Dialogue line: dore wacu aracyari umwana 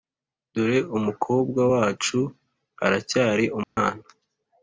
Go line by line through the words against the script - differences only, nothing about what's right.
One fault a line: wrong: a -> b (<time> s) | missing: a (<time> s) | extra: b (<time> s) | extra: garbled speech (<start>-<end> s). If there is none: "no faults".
extra: umukobwa (1.0 s)